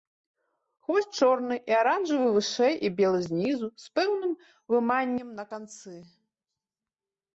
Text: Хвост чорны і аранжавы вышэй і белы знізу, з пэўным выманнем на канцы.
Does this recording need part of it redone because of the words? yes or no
no